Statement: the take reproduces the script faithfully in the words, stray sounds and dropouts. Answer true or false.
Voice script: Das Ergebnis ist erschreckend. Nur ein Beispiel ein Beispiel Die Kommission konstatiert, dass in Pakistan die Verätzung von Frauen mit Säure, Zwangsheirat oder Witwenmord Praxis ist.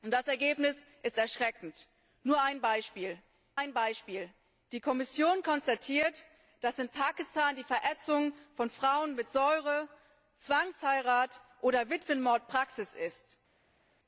true